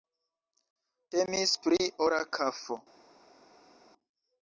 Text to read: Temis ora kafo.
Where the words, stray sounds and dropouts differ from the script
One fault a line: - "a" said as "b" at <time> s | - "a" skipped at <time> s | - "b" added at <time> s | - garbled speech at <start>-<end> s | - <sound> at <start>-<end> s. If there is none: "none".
- "pri" added at 1.7 s